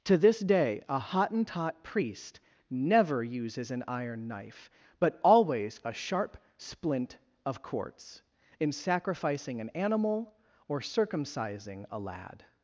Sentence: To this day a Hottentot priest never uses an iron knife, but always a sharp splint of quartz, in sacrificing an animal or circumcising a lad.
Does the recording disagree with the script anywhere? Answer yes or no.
no